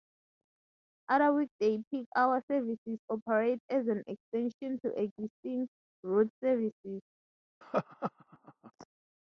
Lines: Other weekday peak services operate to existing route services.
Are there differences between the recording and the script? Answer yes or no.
yes